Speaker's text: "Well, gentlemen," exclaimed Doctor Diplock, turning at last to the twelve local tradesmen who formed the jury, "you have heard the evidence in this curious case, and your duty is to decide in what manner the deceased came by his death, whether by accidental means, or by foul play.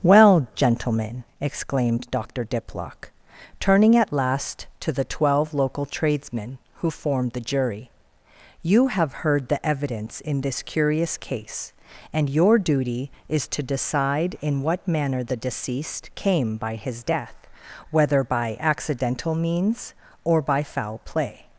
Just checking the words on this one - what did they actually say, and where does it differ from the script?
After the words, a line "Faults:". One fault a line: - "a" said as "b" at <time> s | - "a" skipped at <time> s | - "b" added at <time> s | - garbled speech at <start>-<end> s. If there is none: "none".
"Well, gentlemen," exclaimed Doctor Diplock, turning at last to the twelve local tradesmen who formed the jury, "you have heard the evidence in this curious case, and your duty is to decide in what manner the deceased came by his death, whether by accidental means, or by foul play.
Faults:
none